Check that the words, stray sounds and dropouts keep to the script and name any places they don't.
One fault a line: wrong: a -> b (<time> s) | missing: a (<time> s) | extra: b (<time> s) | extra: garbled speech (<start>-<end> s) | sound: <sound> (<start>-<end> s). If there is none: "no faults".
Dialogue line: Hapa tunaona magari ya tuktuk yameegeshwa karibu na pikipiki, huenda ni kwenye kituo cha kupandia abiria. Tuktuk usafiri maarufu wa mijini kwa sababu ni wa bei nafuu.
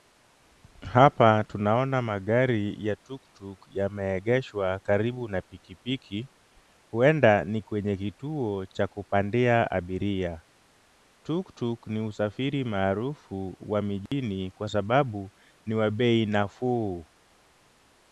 extra: ni (11.9 s)
sound: dropout (14.1-14.1 s)